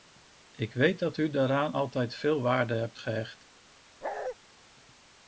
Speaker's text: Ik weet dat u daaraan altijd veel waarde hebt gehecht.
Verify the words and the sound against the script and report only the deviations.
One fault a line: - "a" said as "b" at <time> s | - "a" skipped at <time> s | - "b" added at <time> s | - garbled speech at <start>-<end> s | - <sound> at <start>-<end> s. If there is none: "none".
- bark at 4.0-4.4 s